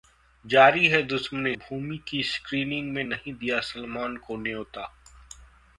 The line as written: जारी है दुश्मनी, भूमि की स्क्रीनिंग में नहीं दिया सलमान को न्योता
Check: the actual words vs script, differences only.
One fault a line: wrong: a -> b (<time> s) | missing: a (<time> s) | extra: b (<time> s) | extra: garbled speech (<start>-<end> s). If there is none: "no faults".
no faults